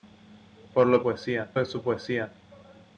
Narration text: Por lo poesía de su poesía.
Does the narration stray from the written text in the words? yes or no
no